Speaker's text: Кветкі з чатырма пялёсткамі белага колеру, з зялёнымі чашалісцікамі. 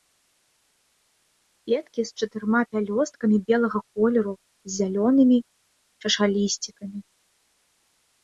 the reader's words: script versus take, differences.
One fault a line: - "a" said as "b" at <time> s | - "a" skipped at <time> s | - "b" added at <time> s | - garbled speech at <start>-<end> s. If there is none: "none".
none